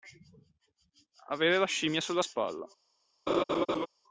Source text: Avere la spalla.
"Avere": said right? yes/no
yes